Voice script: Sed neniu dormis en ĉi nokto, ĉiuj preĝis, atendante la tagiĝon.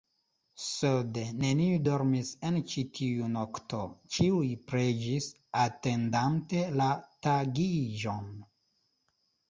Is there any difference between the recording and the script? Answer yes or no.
yes